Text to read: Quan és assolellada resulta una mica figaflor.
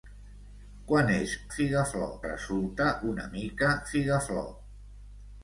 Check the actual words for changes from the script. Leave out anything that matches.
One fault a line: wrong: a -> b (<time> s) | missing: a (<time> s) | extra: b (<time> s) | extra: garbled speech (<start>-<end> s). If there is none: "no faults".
wrong: assolellada -> figaflor (1.6 s)